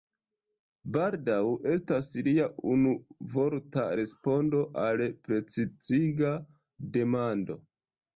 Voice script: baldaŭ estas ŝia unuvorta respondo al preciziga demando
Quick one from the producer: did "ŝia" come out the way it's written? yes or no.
no